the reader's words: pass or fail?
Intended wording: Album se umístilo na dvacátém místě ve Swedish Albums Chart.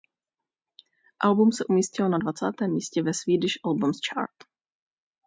pass